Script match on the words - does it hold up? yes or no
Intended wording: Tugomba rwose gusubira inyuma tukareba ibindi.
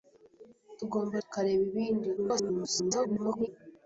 no